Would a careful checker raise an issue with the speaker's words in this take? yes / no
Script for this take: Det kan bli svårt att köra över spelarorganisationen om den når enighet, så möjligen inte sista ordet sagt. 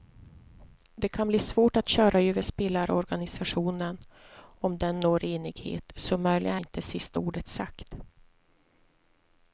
no